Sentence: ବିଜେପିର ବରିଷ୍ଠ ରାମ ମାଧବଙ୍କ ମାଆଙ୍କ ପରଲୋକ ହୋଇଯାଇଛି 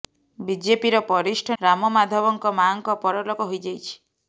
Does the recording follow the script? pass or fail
pass